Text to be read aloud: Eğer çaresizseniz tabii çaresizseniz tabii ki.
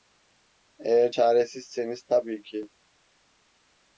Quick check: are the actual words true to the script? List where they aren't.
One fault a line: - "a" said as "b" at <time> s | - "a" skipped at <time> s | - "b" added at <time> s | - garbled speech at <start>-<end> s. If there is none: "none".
- "çaresizseniz tabii" skipped at 2.4 s